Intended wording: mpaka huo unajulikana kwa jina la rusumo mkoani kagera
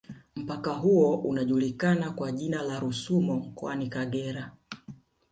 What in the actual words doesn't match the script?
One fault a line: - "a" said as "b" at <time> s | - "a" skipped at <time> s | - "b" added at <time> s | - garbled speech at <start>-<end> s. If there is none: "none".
none